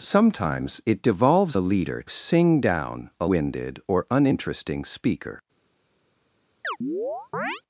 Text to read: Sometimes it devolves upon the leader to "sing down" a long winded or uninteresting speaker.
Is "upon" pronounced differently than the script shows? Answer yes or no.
yes